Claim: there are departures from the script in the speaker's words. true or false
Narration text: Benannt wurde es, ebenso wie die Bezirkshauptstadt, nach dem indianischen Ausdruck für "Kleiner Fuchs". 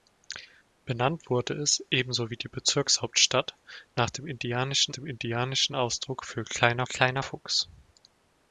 true